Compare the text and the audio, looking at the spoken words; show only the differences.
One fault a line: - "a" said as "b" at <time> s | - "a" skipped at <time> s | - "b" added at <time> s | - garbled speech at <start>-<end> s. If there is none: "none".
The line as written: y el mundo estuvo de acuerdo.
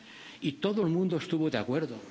- "todo" added at 0.5 s